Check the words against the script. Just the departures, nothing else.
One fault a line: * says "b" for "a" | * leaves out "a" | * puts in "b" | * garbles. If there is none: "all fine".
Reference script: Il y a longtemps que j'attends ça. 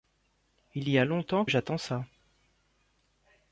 * leaves out "que"